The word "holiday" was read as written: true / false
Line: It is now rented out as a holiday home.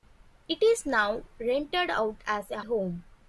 false